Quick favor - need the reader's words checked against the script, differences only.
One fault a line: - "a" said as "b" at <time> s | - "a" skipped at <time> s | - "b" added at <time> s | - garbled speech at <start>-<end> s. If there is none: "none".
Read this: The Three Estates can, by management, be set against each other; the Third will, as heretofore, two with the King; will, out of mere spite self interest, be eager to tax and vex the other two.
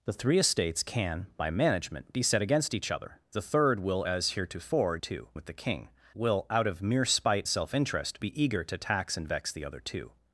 none